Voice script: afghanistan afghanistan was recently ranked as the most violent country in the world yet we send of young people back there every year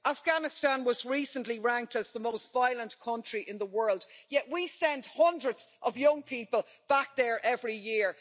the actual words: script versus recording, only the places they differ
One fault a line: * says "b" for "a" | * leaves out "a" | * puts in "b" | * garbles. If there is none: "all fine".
* leaves out "afghanistan"
* puts in "hundreds"